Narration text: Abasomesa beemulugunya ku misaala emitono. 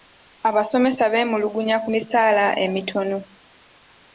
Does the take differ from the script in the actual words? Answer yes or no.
no